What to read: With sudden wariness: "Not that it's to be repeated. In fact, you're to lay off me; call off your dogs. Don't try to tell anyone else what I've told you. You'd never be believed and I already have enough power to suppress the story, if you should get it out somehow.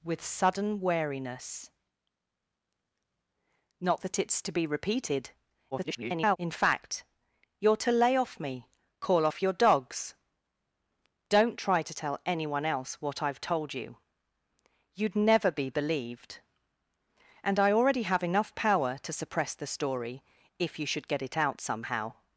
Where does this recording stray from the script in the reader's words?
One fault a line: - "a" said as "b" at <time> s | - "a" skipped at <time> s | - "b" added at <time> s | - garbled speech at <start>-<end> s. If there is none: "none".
- garbled speech at 5.7-6.4 s